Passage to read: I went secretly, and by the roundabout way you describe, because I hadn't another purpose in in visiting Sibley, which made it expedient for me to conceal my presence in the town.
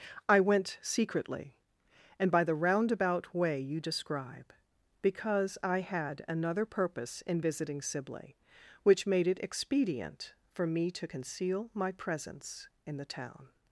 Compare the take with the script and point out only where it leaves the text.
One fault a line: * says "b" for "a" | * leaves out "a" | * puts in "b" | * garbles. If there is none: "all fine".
* says "had" for "hadn't"
* leaves out "in"